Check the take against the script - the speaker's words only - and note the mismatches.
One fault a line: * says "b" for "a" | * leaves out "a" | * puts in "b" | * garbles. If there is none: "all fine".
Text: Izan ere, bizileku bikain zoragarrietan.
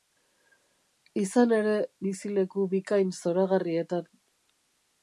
all fine